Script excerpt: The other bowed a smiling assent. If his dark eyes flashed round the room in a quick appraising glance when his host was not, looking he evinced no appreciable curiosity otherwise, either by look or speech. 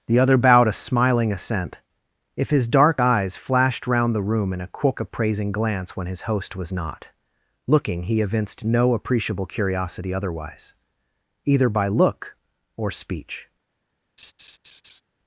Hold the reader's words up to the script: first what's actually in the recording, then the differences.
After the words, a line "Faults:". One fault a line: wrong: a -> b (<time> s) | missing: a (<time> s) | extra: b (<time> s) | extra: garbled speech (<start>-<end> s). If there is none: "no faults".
The other bowed a smiling assent. If his dark eyes flashed round the room in a quick appraising glance when his host was not, looking he evinced no appreciable curiosity otherwise, either by look or speech.
Faults:
no faults